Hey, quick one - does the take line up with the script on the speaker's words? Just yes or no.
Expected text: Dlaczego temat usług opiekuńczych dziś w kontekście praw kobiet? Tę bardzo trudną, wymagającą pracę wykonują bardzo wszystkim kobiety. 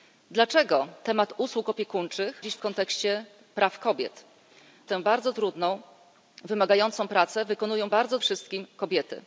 yes